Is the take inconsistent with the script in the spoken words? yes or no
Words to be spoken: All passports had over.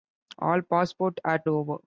no